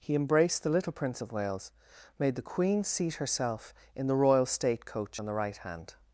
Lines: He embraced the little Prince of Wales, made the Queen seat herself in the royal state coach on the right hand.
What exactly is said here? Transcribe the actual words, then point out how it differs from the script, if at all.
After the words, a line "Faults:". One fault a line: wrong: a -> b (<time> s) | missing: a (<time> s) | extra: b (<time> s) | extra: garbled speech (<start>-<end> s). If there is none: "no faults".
He embraced the little Prince of Wales, made the Queen seat herself in the royal state coach on the right hand.
Faults:
no faults